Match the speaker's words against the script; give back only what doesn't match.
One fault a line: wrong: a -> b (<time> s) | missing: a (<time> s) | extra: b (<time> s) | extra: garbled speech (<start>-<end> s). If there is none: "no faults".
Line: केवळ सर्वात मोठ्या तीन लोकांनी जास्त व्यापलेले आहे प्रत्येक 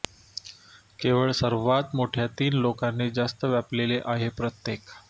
no faults